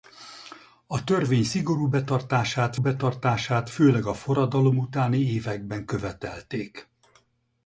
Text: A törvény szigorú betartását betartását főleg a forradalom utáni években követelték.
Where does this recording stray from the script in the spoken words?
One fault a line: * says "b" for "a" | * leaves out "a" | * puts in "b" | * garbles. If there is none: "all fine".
all fine